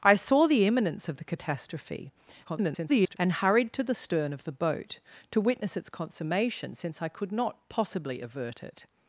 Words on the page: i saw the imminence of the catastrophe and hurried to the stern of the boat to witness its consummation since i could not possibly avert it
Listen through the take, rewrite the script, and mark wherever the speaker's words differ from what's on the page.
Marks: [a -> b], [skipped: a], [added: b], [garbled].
i saw the imminence of the catastrophe [garbled] and hurried to the stern of the boat to witness its consummation since i could not possibly avert it